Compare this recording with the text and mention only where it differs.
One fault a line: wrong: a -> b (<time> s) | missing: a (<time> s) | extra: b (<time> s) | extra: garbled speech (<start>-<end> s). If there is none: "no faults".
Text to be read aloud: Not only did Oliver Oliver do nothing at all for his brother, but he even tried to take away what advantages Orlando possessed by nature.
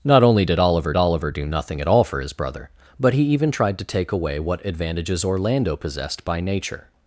no faults